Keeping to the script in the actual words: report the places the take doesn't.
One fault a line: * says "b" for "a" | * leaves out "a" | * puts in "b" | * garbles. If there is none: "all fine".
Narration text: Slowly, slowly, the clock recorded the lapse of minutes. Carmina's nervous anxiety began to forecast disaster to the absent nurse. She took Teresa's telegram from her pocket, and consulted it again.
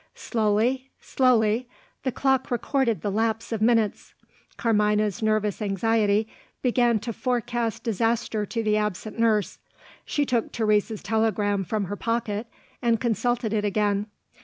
all fine